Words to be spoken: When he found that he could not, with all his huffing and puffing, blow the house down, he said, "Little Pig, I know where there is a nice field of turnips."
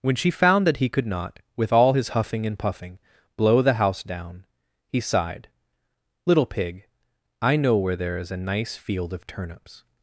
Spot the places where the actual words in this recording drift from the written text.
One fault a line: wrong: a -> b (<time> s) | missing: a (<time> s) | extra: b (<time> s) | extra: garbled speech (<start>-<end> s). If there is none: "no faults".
wrong: he -> she (0.1 s)
wrong: said -> sighed (5.0 s)